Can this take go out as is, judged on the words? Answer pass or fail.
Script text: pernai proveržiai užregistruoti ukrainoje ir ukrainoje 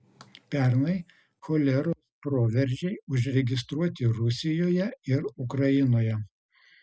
fail